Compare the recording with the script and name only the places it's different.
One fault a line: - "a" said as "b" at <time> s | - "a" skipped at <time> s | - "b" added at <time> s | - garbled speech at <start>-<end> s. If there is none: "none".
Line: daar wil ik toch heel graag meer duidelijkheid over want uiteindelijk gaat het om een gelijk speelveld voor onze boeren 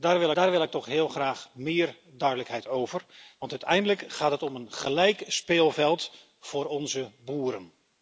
- "daar wil" added at 0.3 s